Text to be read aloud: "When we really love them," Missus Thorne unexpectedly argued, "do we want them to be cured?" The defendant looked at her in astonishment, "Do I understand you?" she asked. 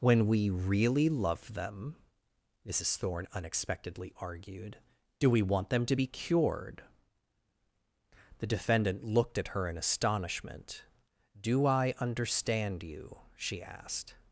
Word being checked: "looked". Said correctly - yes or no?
yes